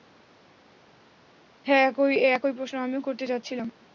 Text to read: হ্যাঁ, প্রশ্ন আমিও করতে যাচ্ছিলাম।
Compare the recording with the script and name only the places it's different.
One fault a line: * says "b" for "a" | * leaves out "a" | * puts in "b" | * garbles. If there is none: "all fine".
* puts in "একই"